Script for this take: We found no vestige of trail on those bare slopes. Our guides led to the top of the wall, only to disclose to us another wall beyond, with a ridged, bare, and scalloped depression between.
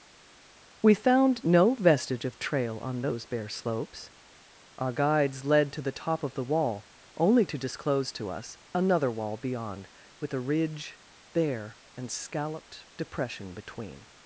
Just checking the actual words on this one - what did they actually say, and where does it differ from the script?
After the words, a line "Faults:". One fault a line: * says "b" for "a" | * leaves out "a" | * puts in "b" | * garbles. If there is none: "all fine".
We found no vestige of trail on those bare slopes. Our guides led to the top of the wall, only to disclose to us another wall beyond, with a ridge, bare, and scalloped depression between.
Faults:
* says "ridge" for "ridged"